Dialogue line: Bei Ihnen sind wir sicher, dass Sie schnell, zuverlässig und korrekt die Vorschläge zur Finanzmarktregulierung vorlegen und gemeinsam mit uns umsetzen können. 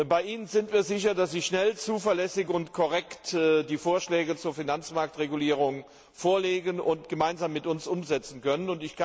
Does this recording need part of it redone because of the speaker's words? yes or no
no